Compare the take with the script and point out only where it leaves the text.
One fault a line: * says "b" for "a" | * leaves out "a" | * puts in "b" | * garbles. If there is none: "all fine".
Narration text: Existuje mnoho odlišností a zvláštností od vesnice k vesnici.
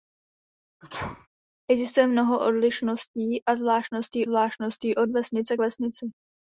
* puts in "zvláštností"